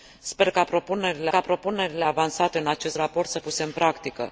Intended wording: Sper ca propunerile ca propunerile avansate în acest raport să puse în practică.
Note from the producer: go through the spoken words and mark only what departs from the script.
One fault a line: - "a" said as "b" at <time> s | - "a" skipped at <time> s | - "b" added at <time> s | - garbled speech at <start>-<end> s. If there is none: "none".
none